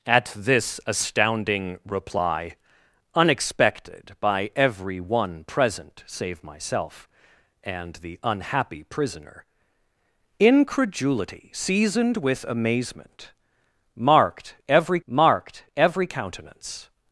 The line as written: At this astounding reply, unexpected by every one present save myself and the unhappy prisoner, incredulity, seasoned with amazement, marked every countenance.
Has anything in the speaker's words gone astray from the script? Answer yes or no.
yes